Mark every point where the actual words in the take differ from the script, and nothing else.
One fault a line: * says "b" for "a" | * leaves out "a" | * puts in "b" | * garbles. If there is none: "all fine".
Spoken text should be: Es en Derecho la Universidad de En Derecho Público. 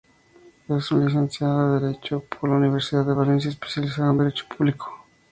* puts in "licenciado"
* puts in "por"
* puts in "Valencia especializado"